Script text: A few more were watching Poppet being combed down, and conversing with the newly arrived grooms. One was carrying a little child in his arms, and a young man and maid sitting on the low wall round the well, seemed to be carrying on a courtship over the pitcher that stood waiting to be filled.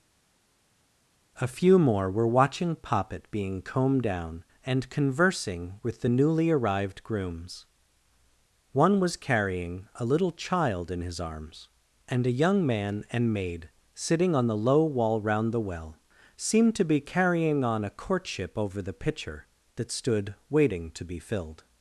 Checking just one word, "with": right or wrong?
right